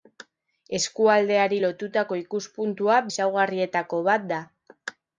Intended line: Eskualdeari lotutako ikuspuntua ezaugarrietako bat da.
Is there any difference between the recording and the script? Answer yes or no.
no